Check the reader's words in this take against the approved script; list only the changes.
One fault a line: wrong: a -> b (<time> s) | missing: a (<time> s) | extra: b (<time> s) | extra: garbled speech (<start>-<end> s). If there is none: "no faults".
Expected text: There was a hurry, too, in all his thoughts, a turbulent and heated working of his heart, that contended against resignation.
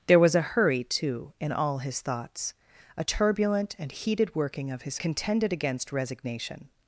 missing: heart that (5.0 s)